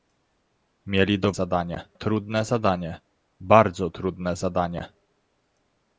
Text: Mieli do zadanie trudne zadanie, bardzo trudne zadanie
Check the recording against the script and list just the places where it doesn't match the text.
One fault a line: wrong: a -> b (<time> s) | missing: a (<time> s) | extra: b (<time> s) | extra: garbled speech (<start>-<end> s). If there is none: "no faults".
no faults